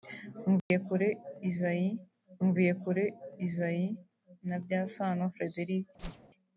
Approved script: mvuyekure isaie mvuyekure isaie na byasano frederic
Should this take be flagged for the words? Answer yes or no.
no